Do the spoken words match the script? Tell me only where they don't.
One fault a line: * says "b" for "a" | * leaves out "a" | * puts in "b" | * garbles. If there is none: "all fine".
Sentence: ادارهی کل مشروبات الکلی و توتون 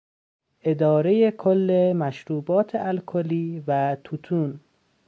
all fine